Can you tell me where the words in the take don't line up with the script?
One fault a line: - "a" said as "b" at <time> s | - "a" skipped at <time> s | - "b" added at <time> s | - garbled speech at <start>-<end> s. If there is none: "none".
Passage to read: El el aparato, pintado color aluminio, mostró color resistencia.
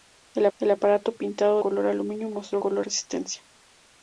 none